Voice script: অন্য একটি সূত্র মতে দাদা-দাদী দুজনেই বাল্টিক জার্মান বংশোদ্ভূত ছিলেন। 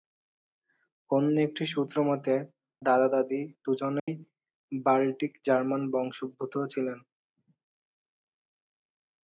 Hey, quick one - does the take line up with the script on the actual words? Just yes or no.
yes